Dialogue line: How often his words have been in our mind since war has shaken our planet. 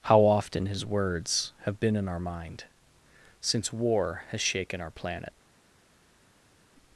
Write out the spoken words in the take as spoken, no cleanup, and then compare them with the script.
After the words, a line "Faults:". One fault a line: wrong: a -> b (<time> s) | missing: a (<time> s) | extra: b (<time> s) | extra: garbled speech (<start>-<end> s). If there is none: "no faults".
How often his words have been in our mind since war has shaken our planet.
Faults:
no faults